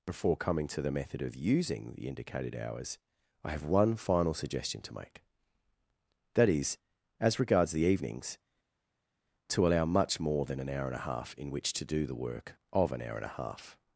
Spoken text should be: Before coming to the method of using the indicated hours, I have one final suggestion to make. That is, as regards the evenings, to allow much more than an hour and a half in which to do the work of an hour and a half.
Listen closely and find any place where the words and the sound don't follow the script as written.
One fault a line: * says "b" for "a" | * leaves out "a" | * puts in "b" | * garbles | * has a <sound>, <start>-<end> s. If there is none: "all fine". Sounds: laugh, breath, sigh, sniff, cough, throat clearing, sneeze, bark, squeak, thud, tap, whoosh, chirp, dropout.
all fine